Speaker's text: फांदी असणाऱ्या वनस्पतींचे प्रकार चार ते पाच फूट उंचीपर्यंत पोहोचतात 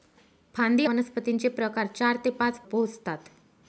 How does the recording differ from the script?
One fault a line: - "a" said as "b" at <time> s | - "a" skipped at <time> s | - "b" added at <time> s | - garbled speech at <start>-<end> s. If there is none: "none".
- "असणाऱ्या" skipped at 0.8 s
- "फूट उंचीपर्यंत" skipped at 2.6 s